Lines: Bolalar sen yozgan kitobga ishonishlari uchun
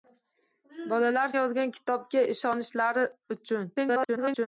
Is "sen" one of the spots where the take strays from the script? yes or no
yes